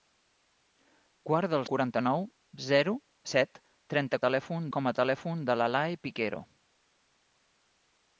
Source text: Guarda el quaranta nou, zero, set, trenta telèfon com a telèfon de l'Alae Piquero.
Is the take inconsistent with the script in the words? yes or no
no